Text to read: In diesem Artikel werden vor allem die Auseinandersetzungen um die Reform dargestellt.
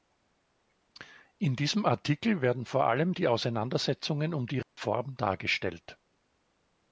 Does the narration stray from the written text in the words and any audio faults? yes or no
yes